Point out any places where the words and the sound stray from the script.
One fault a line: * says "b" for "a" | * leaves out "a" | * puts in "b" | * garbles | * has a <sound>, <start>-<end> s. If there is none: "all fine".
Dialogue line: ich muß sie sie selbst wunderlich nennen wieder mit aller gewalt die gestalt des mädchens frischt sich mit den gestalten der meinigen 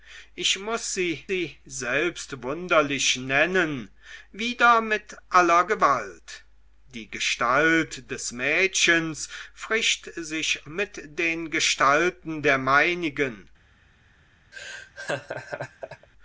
* has a laugh, 14.5-16.1 s